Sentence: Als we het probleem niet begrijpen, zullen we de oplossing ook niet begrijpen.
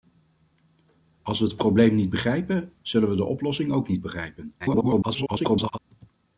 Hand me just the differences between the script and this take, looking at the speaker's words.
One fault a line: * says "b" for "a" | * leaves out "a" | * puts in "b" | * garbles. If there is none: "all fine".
* garbles